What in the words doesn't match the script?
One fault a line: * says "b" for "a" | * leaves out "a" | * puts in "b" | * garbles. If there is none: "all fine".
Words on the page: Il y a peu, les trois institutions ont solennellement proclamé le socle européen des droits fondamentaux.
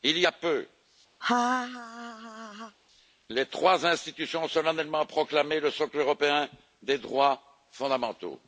all fine